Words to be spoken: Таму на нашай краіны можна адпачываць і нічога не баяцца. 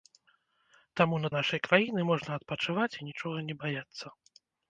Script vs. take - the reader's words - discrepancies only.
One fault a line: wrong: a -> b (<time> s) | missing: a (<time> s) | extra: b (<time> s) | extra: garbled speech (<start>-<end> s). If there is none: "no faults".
no faults